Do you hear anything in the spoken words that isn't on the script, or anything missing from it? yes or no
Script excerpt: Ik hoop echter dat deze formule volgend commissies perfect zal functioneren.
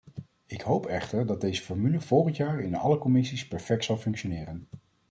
yes